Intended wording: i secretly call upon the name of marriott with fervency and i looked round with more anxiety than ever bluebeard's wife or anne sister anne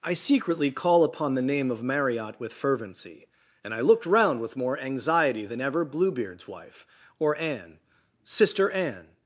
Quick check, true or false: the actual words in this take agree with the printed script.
true